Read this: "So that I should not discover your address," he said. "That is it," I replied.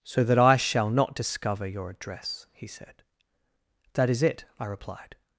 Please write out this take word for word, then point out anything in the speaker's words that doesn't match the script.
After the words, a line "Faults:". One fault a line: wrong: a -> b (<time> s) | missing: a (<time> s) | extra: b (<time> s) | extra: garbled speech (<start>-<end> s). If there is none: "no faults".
"So that I shall not discover your address," he said. "That is it," I replied.
Faults:
wrong: should -> shall (0.6 s)